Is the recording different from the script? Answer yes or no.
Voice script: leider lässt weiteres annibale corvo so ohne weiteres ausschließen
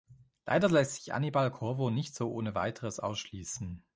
yes